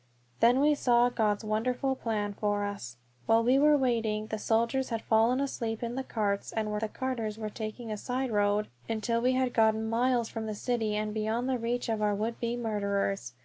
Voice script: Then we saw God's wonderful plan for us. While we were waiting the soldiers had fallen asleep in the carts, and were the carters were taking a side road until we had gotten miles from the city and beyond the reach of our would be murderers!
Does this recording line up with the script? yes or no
yes